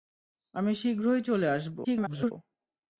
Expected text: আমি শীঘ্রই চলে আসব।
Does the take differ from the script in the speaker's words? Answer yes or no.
yes